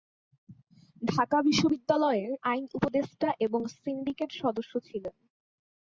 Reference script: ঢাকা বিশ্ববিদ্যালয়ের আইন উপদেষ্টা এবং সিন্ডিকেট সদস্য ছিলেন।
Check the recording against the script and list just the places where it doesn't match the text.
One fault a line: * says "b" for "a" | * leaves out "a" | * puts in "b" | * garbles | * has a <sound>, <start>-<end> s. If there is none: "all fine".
all fine